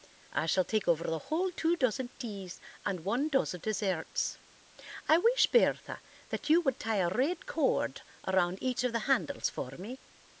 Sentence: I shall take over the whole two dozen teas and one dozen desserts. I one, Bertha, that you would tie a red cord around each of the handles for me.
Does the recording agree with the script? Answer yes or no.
no